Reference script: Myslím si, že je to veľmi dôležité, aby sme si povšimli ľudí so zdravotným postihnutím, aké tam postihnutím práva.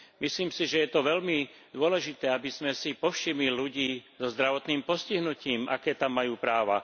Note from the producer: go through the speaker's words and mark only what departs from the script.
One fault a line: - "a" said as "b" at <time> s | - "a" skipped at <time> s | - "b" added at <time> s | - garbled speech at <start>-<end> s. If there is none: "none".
- "postihnutím" said as "majú" at 6.1 s